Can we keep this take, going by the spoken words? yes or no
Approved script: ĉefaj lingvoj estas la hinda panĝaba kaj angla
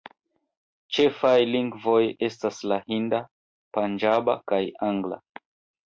yes